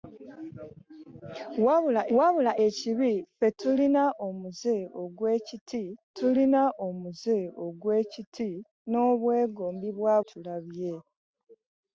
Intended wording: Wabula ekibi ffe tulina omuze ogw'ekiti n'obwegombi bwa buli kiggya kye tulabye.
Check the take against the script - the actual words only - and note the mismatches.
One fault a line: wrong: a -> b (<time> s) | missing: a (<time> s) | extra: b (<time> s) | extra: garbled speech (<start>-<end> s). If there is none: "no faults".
extra: wabula (2.2 s)
wrong: n'obwegombi bwa buli kiggya kye -> tulina omuze ogw'ekiti n'obwegombi bwa (6.2 s)